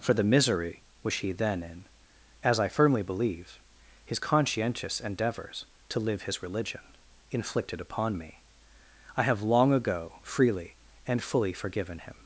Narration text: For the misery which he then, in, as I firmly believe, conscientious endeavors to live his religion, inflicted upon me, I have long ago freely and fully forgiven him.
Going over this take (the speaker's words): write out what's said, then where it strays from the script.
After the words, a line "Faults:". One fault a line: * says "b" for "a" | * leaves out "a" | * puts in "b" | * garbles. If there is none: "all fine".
For the misery which he then, in, as I firmly believe, his conscientious endeavors to live his religion, inflicted upon me, I have long ago freely and fully forgiven him.
Faults:
* puts in "his"